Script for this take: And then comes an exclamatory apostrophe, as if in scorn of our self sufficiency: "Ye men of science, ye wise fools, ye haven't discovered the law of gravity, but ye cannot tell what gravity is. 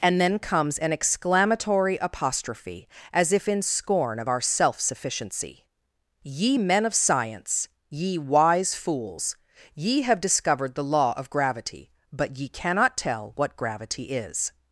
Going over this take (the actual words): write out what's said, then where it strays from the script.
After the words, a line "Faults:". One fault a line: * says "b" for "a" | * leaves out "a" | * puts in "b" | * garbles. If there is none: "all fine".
And then comes an exclamatory apostrophe, as if in scorn of our self sufficiency: "Ye men of science, ye wise fools, ye have discovered the law of gravity, but ye cannot tell what gravity is.
Faults:
* says "have" for "haven't"